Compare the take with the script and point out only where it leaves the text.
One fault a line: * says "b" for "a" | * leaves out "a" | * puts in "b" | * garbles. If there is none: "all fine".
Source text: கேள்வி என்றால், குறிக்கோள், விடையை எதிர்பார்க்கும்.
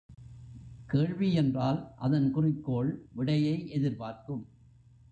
* puts in "அதன்"